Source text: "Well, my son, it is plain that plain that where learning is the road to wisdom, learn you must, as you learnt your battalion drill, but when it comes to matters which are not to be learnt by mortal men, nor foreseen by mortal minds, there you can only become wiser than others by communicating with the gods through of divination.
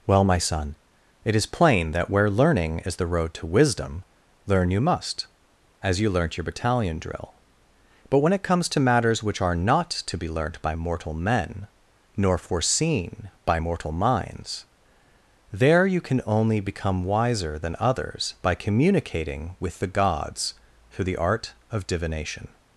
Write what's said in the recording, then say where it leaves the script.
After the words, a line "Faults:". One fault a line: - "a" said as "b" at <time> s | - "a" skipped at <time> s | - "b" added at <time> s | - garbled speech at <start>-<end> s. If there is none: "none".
"Well, my son, it is plain that where learning is the road to wisdom, learn you must, as you learnt your battalion drill, but when it comes to matters which are not to be learnt by mortal men, nor foreseen by mortal minds, there you can only become wiser than others by communicating with the gods through the art of divination.
Faults:
- "plain that" skipped at 2.1 s
- "the art" added at 21.1 s